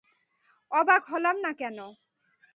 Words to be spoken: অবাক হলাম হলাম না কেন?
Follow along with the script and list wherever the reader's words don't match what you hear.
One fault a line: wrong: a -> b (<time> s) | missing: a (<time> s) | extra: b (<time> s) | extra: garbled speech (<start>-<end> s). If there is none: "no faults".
missing: হলাম (1.4 s)